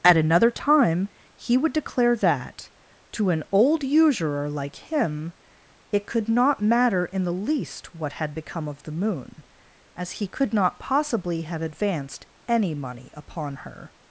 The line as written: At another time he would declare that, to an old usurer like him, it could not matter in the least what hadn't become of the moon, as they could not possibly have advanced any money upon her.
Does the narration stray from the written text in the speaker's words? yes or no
yes